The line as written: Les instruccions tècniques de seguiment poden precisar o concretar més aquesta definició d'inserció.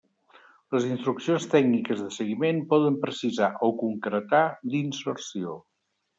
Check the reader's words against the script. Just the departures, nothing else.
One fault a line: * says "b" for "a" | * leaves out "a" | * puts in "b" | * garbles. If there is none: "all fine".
* leaves out "més aquesta definició"